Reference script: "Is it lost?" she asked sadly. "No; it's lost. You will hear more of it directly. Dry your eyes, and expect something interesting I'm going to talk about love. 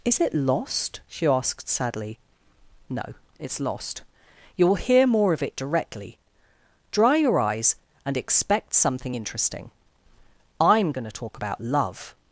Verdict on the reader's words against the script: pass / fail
pass